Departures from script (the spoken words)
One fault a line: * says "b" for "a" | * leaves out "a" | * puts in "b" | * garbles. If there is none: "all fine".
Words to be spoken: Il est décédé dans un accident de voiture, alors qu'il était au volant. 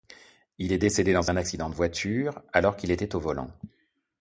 all fine